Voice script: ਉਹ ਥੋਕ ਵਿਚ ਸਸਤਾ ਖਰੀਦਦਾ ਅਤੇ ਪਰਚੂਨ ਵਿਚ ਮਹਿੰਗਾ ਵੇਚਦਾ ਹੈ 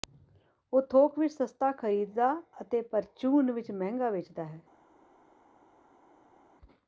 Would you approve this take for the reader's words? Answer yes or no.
yes